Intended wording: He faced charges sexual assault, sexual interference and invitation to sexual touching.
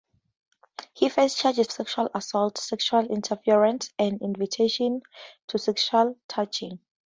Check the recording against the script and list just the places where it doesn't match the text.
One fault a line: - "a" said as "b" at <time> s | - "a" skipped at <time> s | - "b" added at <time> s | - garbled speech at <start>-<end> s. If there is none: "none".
none